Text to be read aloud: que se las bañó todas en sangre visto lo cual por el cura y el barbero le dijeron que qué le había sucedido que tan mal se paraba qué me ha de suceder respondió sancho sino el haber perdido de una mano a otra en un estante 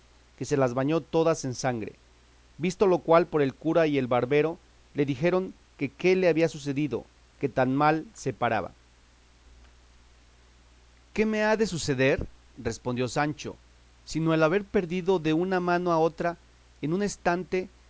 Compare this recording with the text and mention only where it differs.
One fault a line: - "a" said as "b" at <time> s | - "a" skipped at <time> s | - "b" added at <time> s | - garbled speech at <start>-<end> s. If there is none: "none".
none